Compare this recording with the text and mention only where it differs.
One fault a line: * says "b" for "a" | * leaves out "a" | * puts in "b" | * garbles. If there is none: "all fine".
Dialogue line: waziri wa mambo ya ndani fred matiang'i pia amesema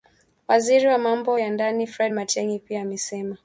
all fine